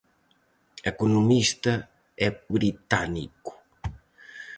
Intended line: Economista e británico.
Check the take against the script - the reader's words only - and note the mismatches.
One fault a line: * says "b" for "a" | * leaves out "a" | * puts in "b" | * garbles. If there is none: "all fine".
all fine